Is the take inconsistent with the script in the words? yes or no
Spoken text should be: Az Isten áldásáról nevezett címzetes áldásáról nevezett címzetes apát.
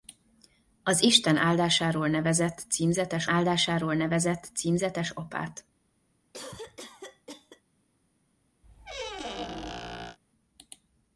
no